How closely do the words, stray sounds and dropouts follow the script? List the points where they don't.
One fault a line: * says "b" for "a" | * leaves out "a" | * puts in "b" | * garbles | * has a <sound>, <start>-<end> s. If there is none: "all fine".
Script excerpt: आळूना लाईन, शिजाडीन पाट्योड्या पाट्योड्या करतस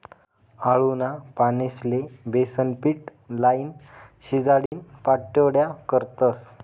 * puts in "पानेस्ले बेसनपीट"
* has a dropout, 4.7-4.7 s
* leaves out "पाट्योड्या"